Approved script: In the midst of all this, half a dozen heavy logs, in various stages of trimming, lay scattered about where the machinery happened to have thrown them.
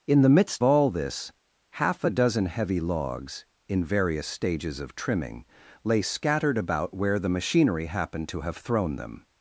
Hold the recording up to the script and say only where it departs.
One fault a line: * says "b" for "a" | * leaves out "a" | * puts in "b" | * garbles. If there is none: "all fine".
* leaves out "of"